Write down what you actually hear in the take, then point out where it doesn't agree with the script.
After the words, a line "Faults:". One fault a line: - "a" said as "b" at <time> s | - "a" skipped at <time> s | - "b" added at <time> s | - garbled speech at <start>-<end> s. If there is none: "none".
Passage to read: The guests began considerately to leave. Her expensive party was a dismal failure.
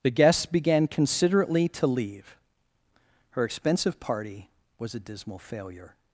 The guests began considerately to leave. Her expensive party was a dismal failure.
Faults:
none